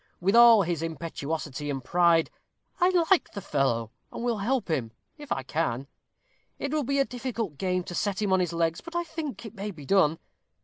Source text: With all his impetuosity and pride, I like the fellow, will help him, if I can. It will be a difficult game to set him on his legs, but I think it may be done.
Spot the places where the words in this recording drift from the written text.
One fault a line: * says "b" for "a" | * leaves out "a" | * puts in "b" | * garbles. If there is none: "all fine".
* puts in "and"